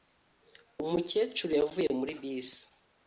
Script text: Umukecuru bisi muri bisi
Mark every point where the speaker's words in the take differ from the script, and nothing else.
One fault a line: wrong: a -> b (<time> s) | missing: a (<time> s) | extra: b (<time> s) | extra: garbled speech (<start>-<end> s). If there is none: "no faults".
wrong: bisi -> yavuye (1.6 s)